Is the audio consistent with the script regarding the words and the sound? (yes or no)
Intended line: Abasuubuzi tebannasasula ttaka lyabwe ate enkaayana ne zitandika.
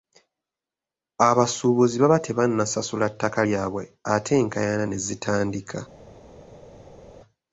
no